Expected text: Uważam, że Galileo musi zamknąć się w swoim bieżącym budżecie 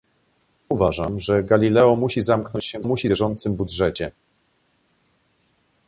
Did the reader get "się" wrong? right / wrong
right